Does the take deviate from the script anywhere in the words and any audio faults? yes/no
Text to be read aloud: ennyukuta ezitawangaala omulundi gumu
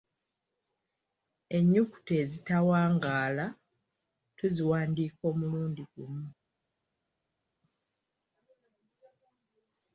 yes